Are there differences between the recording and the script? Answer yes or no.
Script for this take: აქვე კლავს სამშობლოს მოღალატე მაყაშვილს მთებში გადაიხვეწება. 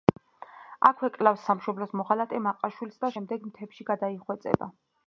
yes